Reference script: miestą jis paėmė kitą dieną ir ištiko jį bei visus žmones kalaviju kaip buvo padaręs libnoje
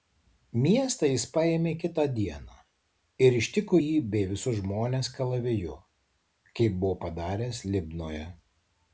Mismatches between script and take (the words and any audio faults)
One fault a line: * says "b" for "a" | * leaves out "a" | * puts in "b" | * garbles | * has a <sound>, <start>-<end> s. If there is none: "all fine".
all fine